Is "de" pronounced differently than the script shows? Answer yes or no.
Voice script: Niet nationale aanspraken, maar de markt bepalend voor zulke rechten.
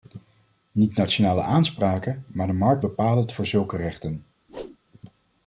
no